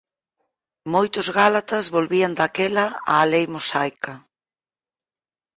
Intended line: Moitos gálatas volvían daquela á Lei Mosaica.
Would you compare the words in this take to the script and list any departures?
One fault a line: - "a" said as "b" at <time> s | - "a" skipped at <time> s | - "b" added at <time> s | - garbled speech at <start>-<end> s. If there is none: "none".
none